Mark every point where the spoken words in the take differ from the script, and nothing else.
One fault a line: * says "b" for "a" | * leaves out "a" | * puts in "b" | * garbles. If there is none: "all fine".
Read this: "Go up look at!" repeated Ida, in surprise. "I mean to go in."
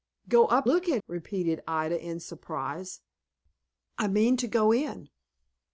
all fine